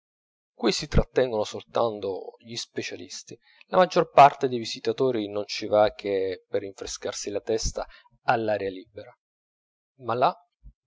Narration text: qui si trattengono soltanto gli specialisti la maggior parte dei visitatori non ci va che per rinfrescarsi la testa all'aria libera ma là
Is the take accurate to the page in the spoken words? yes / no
yes